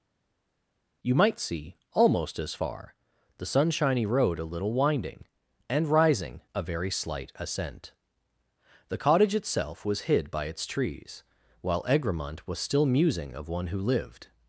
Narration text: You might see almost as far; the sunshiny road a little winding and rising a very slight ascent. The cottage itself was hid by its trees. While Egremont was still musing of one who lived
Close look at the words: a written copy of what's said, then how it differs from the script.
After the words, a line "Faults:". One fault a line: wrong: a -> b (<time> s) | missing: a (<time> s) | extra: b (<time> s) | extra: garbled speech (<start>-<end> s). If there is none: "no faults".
You might see almost as far; the sunshiny road a little winding and rising a very slight ascent. The cottage itself was hid by its trees. While Egremont was still musing of one who lived
Faults:
no faults